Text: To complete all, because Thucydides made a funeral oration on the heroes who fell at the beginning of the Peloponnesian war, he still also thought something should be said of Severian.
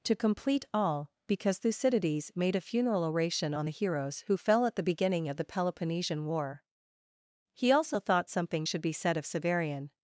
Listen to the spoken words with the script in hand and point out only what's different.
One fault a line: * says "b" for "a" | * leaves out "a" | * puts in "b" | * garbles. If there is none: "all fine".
* leaves out "still"